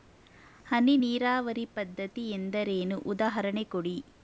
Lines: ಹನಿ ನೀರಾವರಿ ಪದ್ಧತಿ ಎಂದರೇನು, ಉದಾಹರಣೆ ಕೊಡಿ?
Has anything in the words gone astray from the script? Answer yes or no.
no